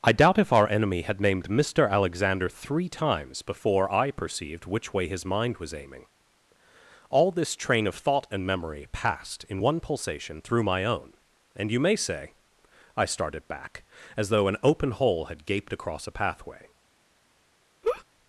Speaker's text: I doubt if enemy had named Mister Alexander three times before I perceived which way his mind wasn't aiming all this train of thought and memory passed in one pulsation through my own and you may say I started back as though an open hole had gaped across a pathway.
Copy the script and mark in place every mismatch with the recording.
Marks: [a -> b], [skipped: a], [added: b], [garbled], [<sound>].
I doubt if [added: our] enemy had named Mister Alexander three times before I perceived which way his mind [wasn't -> was] aiming all this train of thought and memory passed in one pulsation through my own and you may say I started back as though an open hole had gaped across a pathway. [laugh]